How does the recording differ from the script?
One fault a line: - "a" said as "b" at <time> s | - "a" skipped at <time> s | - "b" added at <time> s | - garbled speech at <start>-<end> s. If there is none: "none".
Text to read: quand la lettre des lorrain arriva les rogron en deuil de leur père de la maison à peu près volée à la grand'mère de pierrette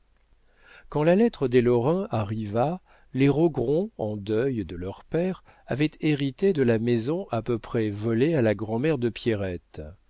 - "avaient hérité" added at 5.7 s